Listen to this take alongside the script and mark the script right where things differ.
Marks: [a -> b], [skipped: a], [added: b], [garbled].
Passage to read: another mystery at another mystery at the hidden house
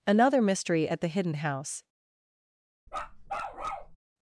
another mystery at [skipped: another mystery at] the hidden house